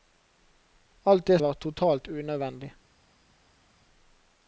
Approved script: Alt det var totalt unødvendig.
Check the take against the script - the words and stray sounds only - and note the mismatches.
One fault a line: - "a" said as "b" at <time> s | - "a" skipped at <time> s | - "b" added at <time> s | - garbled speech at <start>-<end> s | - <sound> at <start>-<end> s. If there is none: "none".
none